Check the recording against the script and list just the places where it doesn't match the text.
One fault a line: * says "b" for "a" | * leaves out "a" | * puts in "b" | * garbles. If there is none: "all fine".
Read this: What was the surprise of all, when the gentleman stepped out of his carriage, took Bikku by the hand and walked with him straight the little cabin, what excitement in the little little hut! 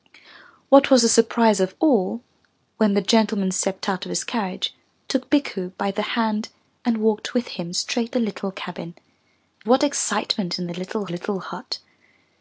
all fine